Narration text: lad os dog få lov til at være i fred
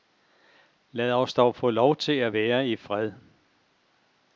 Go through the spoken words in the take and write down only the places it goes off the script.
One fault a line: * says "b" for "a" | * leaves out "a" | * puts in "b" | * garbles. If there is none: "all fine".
all fine